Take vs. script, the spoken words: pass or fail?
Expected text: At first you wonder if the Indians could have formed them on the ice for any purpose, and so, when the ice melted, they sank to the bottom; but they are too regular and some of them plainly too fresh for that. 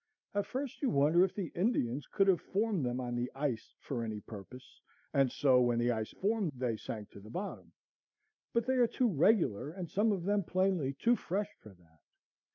fail